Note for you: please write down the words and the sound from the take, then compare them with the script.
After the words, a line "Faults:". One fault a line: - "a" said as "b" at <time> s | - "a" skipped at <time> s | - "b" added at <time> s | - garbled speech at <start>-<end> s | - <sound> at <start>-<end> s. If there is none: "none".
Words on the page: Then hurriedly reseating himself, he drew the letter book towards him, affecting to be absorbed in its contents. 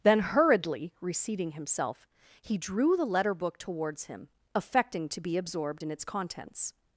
Then hurriedly reseating himself, he drew the letter book towards him, affecting to be absorbed in its contents.
Faults:
none